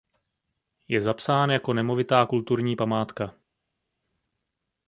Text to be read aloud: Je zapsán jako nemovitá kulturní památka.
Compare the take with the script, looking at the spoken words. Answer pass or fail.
pass